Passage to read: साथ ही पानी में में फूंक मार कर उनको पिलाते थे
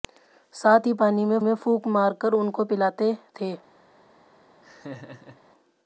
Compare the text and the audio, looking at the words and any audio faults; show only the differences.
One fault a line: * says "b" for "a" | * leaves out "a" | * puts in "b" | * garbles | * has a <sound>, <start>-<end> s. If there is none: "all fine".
* has a laugh, 4.6-5.4 s